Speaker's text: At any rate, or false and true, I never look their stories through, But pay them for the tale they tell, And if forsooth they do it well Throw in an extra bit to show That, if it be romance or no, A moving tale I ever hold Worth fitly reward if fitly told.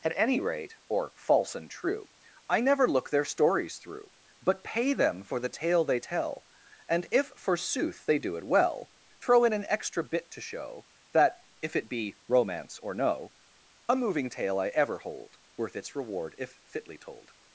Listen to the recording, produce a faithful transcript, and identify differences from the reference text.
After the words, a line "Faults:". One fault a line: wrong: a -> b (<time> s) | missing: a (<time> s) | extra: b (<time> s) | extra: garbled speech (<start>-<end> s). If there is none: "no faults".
At any rate, or false and true, I never look their stories through, But pay them for the tale they tell, And if forsooth they do it well Throw in an extra bit to show That, if it be romance or no, A moving tale I ever hold Worth its reward if fitly told.
Faults:
wrong: fitly -> its (15.7 s)